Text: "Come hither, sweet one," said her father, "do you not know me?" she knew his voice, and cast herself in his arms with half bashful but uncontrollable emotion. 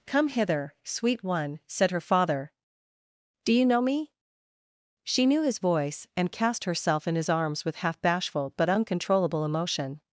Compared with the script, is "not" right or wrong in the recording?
wrong